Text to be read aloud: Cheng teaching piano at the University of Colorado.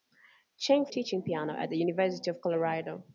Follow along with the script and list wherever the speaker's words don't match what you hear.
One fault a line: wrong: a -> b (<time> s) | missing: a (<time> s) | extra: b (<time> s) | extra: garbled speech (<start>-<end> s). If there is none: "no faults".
no faults